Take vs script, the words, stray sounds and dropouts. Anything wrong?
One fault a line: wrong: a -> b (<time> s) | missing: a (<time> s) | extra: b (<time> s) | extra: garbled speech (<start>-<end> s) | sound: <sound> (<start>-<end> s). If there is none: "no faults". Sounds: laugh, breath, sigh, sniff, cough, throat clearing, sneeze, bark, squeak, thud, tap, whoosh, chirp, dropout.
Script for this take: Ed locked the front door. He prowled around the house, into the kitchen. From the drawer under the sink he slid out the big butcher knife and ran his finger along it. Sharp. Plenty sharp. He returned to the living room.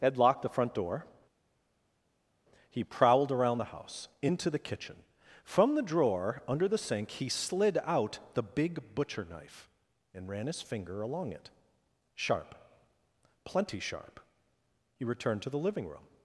no faults